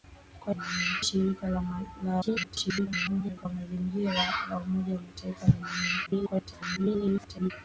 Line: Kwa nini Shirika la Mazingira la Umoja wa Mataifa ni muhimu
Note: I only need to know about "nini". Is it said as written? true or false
false